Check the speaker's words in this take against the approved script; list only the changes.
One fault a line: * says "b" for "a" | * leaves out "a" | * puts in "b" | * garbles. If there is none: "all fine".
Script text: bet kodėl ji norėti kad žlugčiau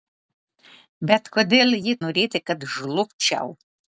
all fine